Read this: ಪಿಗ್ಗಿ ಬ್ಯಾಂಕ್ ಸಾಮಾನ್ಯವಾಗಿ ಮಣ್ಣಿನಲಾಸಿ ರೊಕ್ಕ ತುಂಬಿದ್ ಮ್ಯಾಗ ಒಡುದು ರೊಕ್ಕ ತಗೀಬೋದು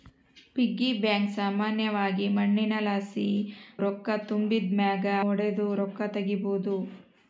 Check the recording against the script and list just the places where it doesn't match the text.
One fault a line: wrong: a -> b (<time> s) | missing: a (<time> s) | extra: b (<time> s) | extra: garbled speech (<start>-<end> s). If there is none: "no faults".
no faults